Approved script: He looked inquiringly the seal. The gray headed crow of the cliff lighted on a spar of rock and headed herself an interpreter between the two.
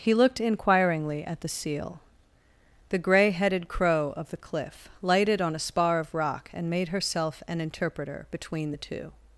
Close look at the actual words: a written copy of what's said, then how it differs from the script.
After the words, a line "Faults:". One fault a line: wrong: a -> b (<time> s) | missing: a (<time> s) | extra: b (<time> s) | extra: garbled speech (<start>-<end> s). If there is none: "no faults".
He looked inquiringly at the seal. The gray headed crow of the cliff lighted on a spar of rock and made herself an interpreter between the two.
Faults:
extra: at (1.2 s)
wrong: headed -> made (6.7 s)